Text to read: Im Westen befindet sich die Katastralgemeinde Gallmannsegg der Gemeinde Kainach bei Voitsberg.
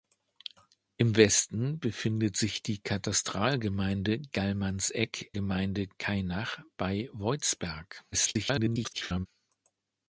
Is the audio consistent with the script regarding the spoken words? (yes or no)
no